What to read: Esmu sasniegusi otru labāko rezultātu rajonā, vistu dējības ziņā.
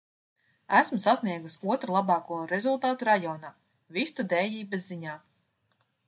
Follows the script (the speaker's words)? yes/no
yes